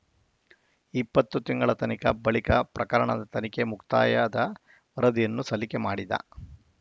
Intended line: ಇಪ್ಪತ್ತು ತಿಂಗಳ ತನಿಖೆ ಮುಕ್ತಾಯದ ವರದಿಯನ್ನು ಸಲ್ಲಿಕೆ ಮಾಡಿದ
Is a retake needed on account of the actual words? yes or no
yes